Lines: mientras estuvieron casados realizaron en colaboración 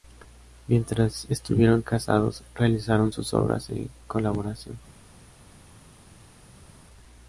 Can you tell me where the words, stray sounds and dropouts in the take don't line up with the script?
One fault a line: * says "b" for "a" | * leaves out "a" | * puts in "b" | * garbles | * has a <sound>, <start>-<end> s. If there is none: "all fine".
* puts in "sus obras"